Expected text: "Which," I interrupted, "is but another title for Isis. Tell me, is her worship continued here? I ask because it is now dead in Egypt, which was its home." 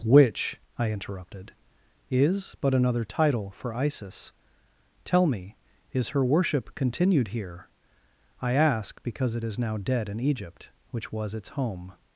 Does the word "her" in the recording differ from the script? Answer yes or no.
no